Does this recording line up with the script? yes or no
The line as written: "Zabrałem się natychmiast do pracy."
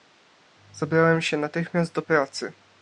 yes